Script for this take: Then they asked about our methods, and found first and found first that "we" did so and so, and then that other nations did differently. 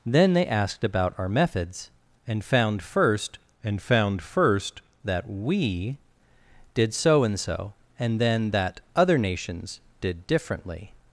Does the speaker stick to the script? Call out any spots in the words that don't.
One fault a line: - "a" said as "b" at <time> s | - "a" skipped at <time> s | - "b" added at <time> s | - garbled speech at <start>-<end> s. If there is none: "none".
none